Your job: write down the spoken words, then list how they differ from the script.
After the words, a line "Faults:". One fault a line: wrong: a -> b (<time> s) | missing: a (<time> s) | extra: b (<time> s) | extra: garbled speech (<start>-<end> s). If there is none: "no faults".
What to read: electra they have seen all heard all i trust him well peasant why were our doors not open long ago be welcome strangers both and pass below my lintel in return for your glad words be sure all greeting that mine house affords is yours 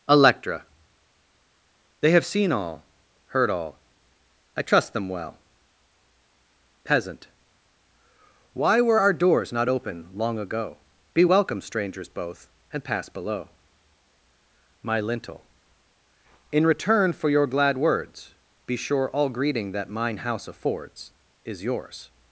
electra they have seen all heard all i trust them well peasant why were our doors not open long ago be welcome strangers both and pass below my lintel in return for your glad words be sure all greeting that mine house affords is yours
Faults:
wrong: him -> them (4.9 s)